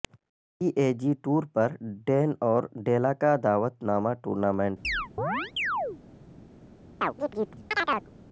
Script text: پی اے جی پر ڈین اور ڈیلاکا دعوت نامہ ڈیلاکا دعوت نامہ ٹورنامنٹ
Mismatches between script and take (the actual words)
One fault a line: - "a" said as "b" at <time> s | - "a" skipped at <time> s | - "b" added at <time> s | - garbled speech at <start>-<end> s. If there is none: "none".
- "ٹور" added at 1.2 s
- "ڈیلاکا دعوت نامہ" skipped at 4.1 s